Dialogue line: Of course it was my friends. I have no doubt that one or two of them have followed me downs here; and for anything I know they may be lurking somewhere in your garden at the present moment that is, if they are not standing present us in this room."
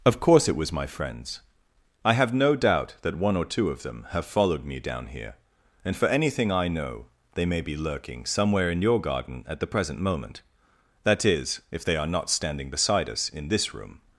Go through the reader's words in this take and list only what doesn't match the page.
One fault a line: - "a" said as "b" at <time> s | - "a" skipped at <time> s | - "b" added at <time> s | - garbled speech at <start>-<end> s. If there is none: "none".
- "downs" said as "down" at 4.8 s
- "present" said as "beside" at 12.7 s